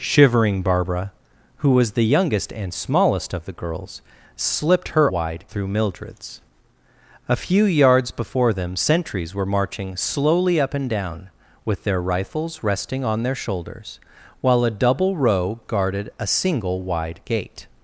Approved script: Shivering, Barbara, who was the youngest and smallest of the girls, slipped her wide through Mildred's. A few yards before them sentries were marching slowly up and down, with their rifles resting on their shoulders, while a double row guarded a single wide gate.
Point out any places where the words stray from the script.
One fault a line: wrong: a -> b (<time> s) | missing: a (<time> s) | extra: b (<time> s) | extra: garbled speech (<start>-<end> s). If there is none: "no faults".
no faults